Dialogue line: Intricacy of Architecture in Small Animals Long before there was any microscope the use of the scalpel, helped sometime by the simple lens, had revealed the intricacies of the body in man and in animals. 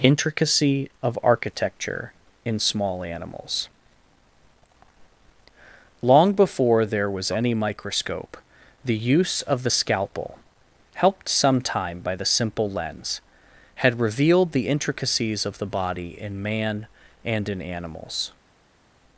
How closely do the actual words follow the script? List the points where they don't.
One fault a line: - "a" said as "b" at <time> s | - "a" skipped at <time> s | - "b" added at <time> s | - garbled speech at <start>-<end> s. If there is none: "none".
none